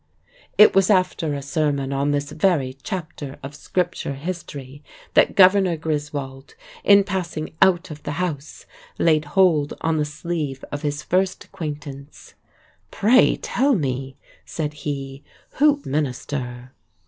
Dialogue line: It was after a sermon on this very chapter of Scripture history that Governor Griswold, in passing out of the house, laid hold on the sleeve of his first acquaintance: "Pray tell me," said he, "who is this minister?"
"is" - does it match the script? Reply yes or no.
no